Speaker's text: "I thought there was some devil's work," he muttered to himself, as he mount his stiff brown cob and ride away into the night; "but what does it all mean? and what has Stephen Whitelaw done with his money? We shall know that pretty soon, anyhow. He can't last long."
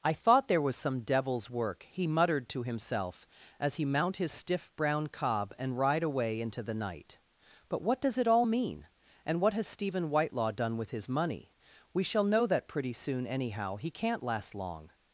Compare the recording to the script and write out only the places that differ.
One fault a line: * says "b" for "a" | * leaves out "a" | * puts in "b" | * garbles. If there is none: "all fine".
all fine